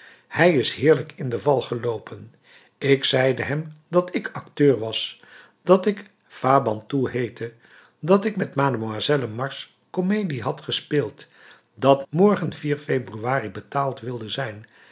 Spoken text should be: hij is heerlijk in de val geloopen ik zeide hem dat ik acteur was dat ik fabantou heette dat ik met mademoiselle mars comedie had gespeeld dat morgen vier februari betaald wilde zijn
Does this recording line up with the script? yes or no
yes